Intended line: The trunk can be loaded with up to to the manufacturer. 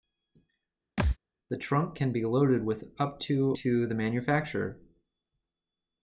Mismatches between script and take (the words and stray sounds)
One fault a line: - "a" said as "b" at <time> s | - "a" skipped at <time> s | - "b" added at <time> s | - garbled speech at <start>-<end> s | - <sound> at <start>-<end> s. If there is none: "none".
- thud at 1.0-1.2 s